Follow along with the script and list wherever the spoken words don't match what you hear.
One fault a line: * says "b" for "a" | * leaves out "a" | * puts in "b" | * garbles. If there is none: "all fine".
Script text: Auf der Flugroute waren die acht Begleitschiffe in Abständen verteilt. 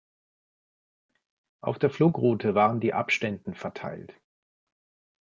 * leaves out "acht Begleitschiffe in"